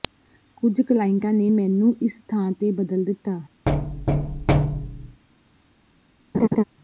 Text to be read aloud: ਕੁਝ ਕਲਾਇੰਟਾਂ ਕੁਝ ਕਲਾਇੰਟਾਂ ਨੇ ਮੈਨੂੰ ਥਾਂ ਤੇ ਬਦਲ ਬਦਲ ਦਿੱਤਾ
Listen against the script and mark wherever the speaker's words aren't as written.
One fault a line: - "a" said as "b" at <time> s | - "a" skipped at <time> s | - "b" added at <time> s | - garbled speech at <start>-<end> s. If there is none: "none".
- "ਕੁਝ ਕਲਾਇੰਟਾਂ" skipped at 1.3 s
- "ਇਸ" added at 2.0 s
- "ਬਦਲ" skipped at 3.0 s